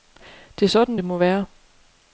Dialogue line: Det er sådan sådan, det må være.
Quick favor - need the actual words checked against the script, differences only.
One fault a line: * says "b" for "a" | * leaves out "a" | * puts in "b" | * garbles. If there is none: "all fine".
* leaves out "sådan"